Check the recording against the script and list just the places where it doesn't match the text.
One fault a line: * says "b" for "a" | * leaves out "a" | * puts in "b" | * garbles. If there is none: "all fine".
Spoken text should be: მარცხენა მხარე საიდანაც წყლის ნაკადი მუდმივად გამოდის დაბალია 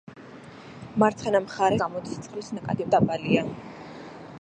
* says "გამოდის" for "საიდანაც"
* leaves out "მუდმივად გამოდის"